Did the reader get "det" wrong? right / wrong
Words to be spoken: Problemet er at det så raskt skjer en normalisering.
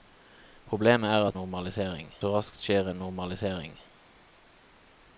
wrong